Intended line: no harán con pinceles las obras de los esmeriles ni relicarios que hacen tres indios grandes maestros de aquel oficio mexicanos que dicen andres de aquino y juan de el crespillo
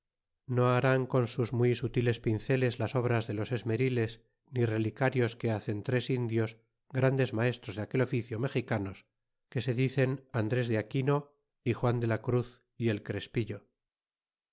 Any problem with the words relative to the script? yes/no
yes